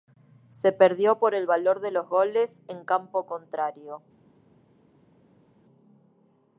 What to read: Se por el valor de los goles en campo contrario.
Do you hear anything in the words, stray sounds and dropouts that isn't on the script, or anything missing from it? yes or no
yes